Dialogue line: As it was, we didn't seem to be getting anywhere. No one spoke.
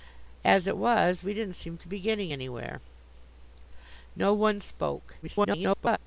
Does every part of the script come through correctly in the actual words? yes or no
no